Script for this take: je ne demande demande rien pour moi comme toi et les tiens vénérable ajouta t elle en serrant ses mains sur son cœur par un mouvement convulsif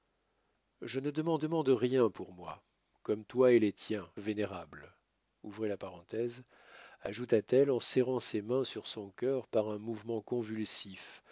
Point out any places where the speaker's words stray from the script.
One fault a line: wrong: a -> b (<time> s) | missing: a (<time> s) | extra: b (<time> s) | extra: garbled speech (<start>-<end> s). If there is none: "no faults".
no faults